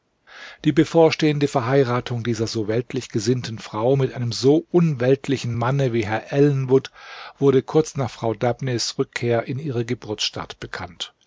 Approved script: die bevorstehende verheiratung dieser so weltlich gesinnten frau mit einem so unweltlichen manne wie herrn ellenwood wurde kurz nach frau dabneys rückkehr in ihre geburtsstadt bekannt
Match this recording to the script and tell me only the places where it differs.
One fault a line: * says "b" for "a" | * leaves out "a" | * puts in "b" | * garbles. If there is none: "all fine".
all fine